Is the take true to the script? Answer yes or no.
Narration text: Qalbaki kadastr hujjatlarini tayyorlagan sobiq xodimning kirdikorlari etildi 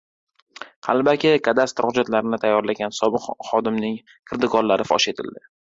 no